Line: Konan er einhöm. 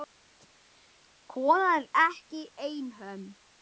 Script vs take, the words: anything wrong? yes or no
yes